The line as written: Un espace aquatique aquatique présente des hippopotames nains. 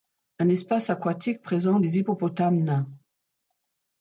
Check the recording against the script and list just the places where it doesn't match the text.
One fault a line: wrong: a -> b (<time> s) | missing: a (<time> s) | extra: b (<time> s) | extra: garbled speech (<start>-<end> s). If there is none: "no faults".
missing: aquatique (1.4 s)